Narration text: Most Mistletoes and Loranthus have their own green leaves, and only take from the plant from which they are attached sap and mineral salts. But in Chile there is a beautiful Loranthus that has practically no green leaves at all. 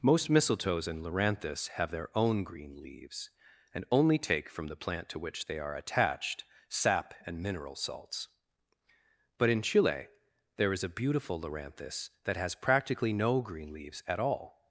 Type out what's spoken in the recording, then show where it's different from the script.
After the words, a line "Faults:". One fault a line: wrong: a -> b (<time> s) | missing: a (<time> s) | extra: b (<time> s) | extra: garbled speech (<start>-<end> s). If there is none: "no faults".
Most Mistletoes and Loranthus have their own green leaves, and only take from the plant to which they are attached sap and mineral salts. But in Chile there is a beautiful Loranthus that has practically no green leaves at all.
Faults:
wrong: from -> to (5.1 s)